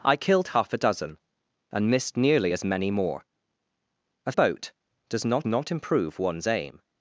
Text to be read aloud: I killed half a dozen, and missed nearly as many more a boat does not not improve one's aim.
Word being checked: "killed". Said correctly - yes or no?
yes